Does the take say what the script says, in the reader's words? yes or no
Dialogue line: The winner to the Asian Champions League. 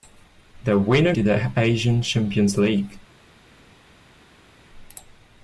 yes